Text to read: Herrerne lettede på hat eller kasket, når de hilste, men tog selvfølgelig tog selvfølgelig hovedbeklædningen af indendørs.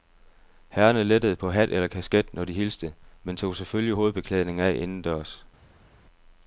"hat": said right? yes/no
yes